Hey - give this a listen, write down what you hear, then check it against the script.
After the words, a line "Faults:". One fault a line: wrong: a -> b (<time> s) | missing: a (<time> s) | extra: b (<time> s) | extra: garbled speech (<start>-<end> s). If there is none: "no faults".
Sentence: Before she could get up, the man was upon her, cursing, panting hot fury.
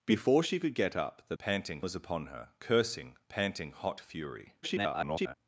Before she could get up, the panting was upon her, cursing, panting hot fury. [garbled]
Faults:
wrong: man -> panting (1.4 s)
extra: garbled speech (4.6-5.3 s)